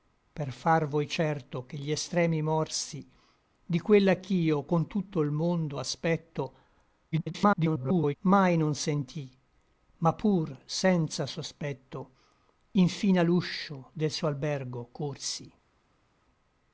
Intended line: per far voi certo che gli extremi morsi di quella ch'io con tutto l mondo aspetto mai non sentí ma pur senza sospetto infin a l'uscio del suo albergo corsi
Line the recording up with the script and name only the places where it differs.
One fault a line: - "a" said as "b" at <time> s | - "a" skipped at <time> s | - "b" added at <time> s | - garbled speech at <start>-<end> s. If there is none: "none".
- garbled speech at 7.1-8.2 s